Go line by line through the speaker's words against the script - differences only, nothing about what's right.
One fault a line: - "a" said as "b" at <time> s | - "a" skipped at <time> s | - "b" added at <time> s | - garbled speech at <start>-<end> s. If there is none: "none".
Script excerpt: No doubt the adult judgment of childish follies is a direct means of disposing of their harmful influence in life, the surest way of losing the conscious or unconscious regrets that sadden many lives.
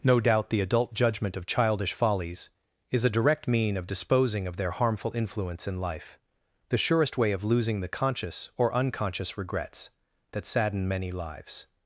- "means" said as "mean" at 3.5 s